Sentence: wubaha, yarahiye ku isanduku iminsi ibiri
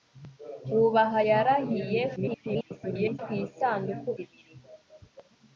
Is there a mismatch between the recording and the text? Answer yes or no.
yes